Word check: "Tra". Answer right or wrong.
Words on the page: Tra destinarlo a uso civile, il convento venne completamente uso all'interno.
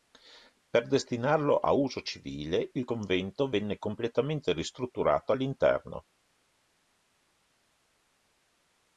wrong